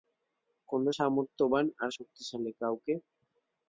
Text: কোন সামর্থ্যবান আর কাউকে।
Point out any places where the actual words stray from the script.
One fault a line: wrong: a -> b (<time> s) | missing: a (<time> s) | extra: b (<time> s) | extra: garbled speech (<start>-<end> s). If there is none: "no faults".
extra: শক্তিশালী (2.0 s)